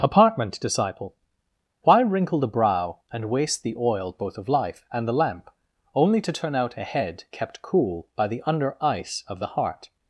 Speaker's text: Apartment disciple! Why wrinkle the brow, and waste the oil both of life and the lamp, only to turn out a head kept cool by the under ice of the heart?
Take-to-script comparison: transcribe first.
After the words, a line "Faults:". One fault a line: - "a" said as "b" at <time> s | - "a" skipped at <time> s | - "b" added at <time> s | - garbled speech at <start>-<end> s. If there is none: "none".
Apartment disciple! Why wrinkle the brow, and waste the oil both of life and the lamp, only to turn out a head kept cool by the under ice of the heart?
Faults:
none